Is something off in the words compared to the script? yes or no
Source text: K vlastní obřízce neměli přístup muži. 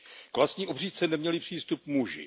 no